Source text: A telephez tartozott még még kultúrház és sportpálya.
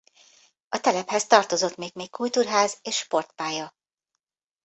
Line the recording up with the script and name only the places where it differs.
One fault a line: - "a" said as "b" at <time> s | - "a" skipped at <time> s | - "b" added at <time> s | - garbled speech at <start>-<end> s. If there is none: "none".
none